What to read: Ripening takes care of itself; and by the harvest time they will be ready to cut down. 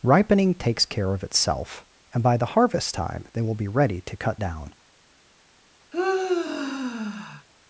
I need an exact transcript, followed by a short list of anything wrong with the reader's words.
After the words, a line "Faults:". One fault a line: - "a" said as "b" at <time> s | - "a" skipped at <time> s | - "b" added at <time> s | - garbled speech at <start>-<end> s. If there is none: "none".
Ripening takes care of itself; and by the harvest time they will be ready to cut down.
Faults:
none